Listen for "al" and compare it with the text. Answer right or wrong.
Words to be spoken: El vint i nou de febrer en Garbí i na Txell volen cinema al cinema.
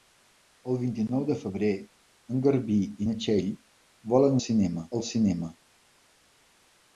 right